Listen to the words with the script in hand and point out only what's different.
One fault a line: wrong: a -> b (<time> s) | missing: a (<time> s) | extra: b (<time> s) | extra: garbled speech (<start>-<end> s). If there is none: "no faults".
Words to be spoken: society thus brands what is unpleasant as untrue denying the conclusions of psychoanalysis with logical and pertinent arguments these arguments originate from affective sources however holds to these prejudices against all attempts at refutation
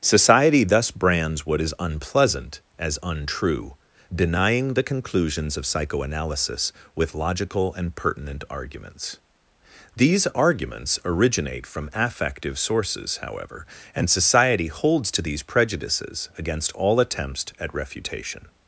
extra: and society (13.9 s)